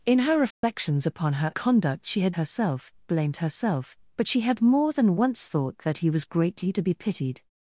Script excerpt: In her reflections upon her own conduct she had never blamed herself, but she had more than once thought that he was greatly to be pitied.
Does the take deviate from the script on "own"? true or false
true